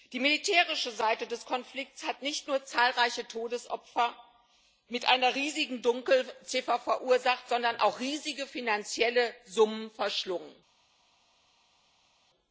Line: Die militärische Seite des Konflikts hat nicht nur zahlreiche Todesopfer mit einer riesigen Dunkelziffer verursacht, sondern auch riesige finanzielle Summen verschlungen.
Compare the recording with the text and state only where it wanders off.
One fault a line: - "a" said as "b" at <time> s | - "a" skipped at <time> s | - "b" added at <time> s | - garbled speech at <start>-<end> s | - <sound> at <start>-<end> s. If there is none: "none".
none